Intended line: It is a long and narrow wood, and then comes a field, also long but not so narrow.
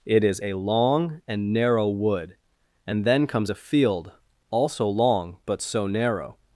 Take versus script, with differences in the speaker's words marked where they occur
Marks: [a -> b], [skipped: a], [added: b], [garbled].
It is a long and narrow wood, and then comes a field, also long but [skipped: not] so narrow.